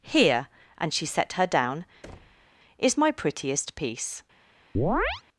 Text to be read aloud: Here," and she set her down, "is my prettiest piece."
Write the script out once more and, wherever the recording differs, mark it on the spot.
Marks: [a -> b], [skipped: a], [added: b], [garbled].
Here," and she set her down, "is my prettiest piece."